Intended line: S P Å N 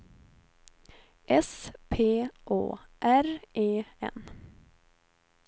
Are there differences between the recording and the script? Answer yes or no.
yes